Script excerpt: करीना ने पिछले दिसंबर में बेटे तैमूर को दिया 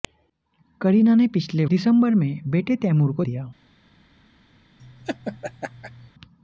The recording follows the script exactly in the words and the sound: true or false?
false